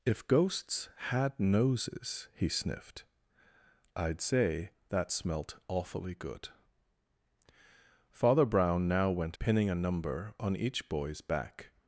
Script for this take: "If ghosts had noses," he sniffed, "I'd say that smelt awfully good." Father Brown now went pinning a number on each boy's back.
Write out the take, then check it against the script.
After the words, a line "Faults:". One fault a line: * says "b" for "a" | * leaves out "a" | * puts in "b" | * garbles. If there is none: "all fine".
"If ghosts had noses," he sniffed, "I'd say that smelt awfully good." Father Brown now went pinning a number on each boy's back.
Faults:
all fine